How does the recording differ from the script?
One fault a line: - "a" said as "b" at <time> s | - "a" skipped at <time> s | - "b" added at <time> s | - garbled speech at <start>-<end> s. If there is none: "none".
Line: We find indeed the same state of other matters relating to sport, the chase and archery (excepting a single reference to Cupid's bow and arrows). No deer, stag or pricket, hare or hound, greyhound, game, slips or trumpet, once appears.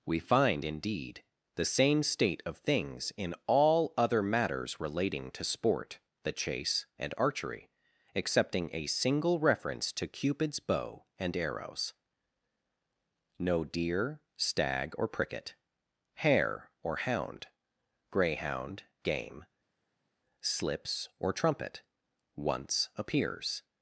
- "things in all" added at 2.6 s